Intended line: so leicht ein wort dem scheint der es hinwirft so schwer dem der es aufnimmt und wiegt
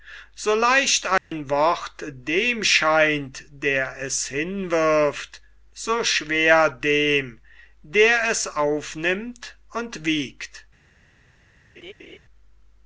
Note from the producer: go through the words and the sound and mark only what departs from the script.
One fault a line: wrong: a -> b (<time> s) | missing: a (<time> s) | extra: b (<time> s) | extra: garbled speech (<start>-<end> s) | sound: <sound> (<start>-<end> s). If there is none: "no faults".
sound: dropout (1.2-1.3 s)
sound: laugh (11.8-12.2 s)